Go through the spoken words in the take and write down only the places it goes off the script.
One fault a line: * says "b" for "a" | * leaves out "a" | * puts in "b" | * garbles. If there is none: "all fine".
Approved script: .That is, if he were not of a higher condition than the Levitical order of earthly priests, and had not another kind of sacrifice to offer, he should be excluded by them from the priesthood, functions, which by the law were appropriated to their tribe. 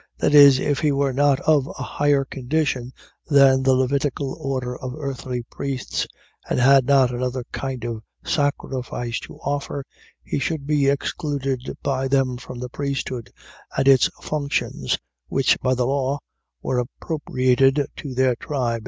* puts in "and its"